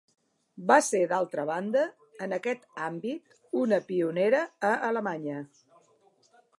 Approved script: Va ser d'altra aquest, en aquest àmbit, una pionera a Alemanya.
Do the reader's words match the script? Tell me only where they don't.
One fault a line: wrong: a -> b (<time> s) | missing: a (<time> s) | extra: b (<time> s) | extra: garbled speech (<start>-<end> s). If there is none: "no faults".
wrong: aquest -> banda (1.5 s)